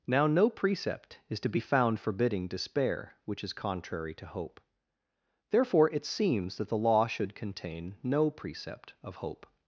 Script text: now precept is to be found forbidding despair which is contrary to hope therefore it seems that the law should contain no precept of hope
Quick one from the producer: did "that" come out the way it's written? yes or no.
yes